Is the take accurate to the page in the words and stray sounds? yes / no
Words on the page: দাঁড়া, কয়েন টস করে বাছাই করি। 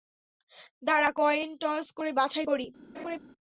no